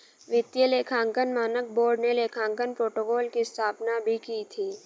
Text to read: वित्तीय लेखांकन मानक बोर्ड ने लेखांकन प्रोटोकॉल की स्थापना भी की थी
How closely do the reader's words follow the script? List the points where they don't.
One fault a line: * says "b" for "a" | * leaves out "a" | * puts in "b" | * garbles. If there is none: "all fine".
all fine